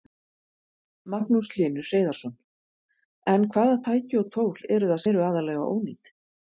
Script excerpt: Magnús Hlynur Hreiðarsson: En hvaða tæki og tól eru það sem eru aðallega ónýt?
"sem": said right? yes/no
no